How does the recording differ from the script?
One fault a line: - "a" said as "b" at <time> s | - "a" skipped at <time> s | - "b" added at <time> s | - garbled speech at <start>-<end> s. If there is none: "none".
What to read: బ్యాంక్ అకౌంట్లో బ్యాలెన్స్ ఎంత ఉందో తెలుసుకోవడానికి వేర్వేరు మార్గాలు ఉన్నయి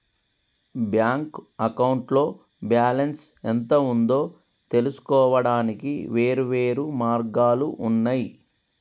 none